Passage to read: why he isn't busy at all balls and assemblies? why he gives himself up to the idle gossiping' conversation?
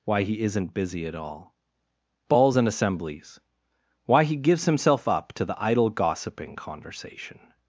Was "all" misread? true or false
false